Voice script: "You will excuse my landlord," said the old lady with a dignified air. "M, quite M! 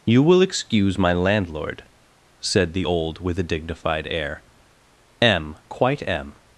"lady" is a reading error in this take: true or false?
true